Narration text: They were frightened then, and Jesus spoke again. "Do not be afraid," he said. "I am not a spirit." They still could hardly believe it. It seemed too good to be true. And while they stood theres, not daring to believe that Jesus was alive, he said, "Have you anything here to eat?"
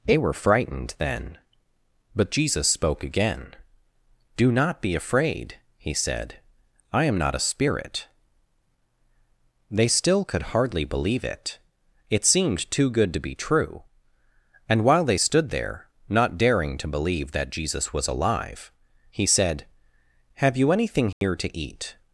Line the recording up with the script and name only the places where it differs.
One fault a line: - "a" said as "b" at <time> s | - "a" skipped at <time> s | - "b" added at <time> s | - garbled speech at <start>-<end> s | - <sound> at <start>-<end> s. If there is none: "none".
- "and" said as "but" at 2.1 s
- "theres" said as "there" at 15.5 s
- dropout at 21.1-21.2 s